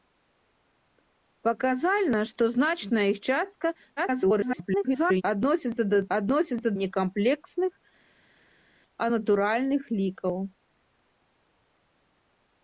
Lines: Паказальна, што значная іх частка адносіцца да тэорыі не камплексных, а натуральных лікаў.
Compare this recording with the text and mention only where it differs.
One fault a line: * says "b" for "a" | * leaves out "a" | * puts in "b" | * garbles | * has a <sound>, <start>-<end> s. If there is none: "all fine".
* garbles
* says "адносіцца" for "тэорыі"